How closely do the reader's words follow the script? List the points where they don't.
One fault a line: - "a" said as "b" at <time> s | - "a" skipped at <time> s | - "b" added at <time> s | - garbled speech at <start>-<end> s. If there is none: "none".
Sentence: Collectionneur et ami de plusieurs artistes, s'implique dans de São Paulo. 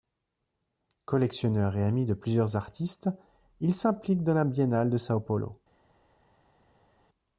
- "il" added at 3.6 s
- "la Biennale" added at 4.3 s